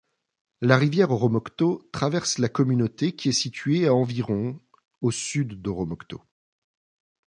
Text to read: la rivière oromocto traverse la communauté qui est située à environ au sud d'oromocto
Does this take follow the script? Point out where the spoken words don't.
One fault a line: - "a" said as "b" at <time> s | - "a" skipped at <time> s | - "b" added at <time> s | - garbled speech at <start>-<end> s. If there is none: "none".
none